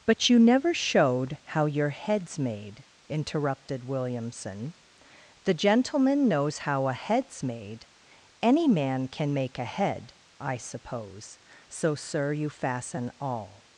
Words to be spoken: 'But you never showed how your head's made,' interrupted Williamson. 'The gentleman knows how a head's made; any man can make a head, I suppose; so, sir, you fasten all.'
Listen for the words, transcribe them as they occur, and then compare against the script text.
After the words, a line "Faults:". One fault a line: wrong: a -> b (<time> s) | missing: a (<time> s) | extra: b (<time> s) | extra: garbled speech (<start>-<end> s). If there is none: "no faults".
'But you never showed how your head's made,' interrupted Williamson. 'The gentleman knows how a head's made; any man can make a head, I suppose; so, sir, you fasten all.'
Faults:
no faults